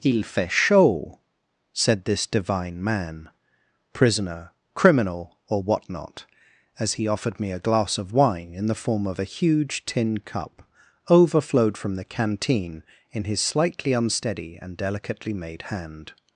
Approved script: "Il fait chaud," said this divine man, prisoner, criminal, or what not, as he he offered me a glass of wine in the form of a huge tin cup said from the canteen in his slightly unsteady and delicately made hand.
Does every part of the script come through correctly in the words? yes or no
no